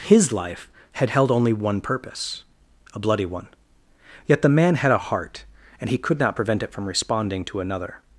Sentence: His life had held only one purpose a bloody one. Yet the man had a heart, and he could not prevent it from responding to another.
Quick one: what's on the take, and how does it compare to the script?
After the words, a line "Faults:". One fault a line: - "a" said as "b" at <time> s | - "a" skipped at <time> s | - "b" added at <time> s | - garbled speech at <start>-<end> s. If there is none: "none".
His life had held only one purpose a bloody one. Yet the man had a heart, and he could not prevent it from responding to another.
Faults:
none